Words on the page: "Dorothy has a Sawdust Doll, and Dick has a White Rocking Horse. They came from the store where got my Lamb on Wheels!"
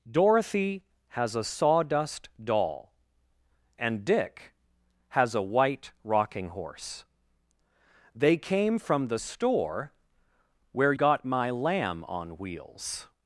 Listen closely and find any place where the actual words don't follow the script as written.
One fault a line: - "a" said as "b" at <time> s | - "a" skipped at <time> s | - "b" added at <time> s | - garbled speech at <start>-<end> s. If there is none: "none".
none